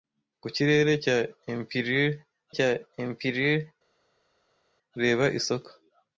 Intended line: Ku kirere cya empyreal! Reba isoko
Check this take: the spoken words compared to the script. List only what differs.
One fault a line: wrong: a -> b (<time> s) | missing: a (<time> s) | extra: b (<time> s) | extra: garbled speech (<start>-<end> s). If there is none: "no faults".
extra: cya empyreal (2.6 s)